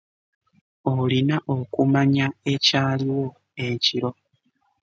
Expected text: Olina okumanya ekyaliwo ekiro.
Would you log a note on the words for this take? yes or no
no